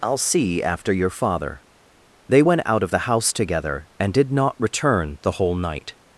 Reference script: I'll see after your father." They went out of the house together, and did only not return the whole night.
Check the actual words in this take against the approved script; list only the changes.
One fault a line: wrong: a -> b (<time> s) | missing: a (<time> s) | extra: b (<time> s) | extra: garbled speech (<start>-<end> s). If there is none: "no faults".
missing: only (4.3 s)